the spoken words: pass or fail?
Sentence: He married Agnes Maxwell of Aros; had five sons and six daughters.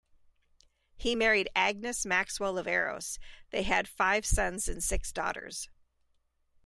fail